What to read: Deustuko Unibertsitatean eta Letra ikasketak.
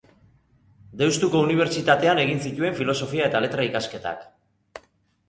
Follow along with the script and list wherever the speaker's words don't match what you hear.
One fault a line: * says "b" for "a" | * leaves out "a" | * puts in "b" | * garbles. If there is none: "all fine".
* puts in "egin zituen Filosofia"